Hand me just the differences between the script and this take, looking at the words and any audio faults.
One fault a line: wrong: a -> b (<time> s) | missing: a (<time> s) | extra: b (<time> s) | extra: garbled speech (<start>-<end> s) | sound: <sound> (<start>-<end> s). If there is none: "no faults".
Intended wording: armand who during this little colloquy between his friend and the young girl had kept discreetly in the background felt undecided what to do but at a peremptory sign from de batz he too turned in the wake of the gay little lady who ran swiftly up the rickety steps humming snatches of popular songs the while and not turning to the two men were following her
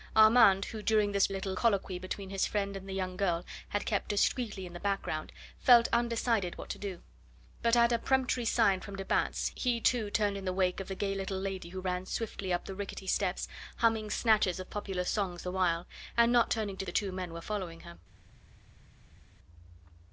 no faults